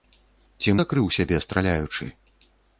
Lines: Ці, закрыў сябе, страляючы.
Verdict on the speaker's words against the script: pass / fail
pass